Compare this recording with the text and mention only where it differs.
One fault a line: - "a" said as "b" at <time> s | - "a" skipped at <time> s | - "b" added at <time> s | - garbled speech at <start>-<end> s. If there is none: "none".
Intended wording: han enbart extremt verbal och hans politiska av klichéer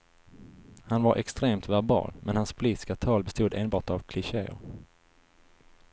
- "enbart" said as "var" at 1.0 s
- "och" said as "men" at 2.2 s
- "tal bestod enbart" added at 2.9 s